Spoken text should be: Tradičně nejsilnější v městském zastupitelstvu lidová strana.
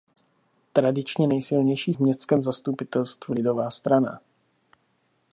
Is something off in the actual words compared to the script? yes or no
no